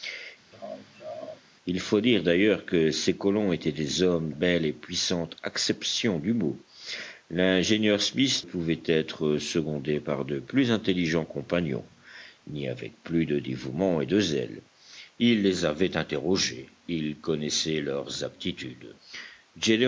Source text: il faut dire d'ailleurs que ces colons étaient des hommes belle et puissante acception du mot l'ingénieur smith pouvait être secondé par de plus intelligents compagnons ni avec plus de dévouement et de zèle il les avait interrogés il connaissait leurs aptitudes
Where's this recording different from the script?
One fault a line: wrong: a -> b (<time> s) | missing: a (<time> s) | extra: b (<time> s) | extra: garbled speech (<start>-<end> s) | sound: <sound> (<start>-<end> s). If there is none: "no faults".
sound: laugh (0.5-1.4 s)